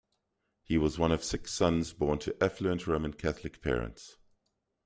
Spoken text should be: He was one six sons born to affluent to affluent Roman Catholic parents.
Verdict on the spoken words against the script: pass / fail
fail